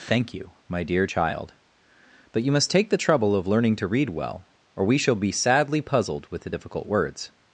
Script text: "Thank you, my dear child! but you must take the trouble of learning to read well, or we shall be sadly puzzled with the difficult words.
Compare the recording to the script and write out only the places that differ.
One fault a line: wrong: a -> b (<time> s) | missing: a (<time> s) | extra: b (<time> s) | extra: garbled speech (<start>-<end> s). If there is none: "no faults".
no faults